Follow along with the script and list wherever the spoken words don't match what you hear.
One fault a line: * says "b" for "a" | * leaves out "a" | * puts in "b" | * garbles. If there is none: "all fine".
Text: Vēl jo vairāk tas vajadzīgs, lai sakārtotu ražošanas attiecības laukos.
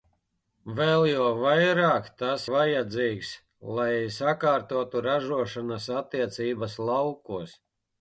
all fine